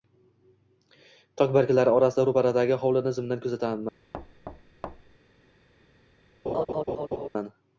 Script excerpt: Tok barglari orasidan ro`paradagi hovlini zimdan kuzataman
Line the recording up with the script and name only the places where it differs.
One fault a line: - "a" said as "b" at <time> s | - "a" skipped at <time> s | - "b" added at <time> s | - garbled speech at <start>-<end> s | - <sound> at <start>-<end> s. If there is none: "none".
- thud at 4.1-5.2 s
- laugh at 6.5-7.3 s